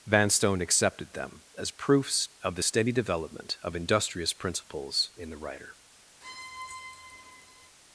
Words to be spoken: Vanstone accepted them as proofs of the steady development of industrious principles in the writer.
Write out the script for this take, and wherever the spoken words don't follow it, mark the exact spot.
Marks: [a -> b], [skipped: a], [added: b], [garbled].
Vanstone accepted them as proofs of the steady development of industrious principles in the writer.